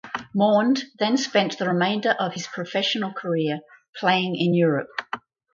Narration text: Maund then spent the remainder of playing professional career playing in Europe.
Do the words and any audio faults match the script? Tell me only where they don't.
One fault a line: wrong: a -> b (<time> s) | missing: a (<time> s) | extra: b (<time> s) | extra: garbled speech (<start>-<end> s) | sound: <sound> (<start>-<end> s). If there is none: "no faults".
wrong: playing -> his (2.3 s)